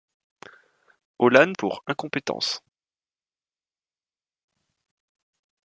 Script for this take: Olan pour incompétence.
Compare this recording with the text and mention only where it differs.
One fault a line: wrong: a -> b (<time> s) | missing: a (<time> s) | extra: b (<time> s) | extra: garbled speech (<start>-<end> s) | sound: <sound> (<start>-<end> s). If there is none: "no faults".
no faults